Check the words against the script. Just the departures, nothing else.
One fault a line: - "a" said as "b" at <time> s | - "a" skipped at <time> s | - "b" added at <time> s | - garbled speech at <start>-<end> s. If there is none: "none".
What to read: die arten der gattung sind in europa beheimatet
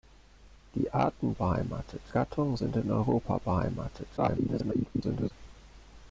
- "der" said as "beheimatet" at 1.3 s
- garbled speech at 4.2-5.3 s